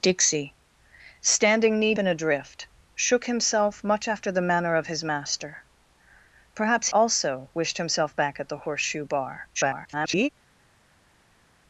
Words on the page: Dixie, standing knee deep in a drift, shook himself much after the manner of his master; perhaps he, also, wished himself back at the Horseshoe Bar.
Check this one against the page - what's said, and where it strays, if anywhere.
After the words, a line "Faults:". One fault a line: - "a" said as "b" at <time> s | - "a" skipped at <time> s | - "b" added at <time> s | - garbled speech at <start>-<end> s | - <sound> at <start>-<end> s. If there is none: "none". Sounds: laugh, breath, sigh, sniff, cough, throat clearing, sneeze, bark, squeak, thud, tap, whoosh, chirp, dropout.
Dixie, standing knee in a drift, shook himself much after the manner of his master; perhaps also, wished himself back at the Horseshoe Bar. [garbled]
Faults:
- "deep" skipped at 1.9 s
- "he" skipped at 6.9 s
- garbled speech at 9.5-10.3 s